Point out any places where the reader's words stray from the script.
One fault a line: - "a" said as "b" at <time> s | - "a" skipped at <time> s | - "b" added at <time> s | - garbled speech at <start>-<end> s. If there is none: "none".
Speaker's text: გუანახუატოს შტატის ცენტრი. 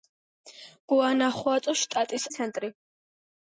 none